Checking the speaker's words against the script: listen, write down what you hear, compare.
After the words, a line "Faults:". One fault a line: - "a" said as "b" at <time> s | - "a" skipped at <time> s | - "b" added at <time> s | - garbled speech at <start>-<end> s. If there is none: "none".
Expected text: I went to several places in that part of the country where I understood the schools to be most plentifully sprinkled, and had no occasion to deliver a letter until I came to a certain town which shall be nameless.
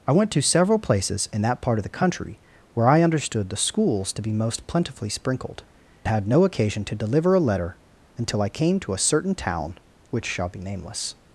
I went to several places in that part of the country where I understood the schools to be most plentifully sprinkled, had no occasion to deliver a letter until I came to a certain town which shall be nameless.
Faults:
- "and" skipped at 5.6 s